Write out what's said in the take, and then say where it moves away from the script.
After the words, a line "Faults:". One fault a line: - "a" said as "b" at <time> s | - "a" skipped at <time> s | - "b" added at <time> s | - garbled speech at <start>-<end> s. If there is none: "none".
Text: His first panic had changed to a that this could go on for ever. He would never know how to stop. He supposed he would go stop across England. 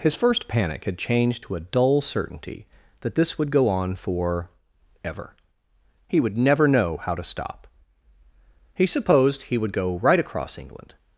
His first panic had changed to a dull certainty that this would go on for ever. He would never know how to stop. He supposed he would go right across England.
Faults:
- "dull certainty" added at 1.6 s
- "could" said as "would" at 3.4 s
- "stop" said as "right" at 10.0 s